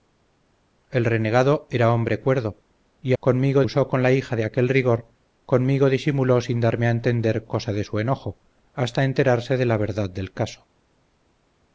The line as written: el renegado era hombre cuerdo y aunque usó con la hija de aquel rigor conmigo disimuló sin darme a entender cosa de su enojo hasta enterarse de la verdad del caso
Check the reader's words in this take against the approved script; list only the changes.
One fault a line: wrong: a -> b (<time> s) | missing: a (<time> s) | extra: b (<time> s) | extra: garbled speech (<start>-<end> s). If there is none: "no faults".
wrong: aunque -> conmigo (3.2 s)